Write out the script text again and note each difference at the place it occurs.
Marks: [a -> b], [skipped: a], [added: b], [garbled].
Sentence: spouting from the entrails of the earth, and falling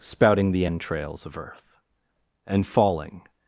spouting [skipped: from] the entrails of [skipped: the] earth, and falling